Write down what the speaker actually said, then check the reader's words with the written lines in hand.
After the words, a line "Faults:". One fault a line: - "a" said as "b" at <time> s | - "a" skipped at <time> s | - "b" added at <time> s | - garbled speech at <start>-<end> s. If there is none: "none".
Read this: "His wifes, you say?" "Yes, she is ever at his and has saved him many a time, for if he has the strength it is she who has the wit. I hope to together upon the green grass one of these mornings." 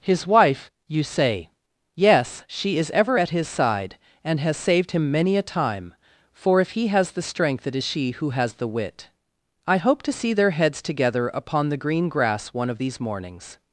"His wife, you say?" "Yes, she is ever at his side, and has saved him many a time, for if he has the strength it is she who has the wit. I hope to see their heads together upon the green grass one of these mornings."
Faults:
- "wifes" said as "wife" at 0.2 s
- "side" added at 3.5 s
- "see their heads" added at 10.1 s